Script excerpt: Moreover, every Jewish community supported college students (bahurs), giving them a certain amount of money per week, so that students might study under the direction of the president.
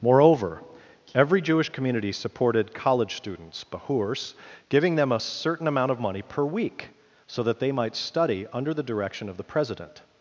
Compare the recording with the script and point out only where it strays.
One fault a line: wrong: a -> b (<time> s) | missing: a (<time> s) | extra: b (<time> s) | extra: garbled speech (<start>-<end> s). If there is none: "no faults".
wrong: students -> they (7.6 s)